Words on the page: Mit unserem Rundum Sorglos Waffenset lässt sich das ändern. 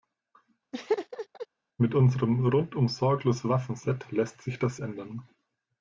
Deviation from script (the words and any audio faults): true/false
true